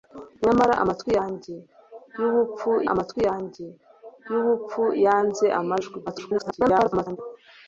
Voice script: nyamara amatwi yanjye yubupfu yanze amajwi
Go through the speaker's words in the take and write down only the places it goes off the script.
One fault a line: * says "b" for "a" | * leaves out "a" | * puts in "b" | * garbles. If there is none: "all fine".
* puts in "amatwi yanjye yubupfu"
* garbles